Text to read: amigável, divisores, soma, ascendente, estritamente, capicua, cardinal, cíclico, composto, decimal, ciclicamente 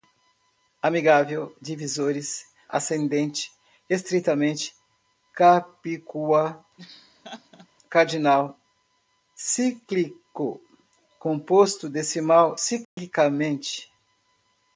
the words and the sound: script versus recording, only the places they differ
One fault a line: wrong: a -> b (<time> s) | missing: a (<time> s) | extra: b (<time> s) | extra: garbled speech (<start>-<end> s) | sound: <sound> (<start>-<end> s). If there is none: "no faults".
missing: soma (2.5 s)
sound: laugh (6.8-7.7 s)
sound: dropout (12.8-13.0 s)